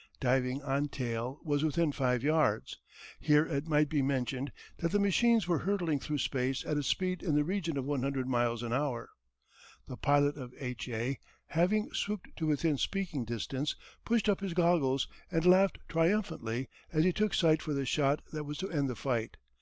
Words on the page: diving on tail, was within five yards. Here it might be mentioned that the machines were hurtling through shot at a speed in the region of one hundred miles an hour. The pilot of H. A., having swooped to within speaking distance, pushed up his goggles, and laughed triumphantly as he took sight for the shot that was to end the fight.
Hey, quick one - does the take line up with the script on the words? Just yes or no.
no